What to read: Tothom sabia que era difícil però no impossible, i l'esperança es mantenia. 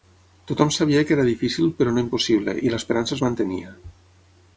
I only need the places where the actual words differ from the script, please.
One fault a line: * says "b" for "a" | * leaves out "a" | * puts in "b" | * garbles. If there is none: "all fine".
all fine